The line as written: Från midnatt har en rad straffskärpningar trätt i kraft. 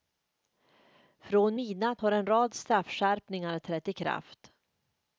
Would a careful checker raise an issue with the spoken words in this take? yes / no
no